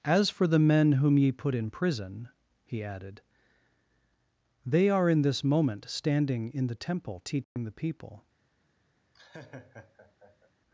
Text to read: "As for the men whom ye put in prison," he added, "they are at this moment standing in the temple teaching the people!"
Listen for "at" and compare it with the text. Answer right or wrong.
wrong